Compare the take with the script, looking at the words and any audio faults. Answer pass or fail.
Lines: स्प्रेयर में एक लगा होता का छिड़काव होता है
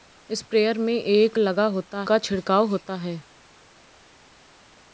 pass